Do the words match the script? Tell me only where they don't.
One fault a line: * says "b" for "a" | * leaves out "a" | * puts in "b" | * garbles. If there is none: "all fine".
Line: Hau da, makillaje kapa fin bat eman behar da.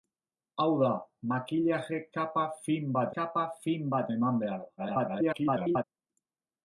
* puts in "kapa fin bat"
* garbles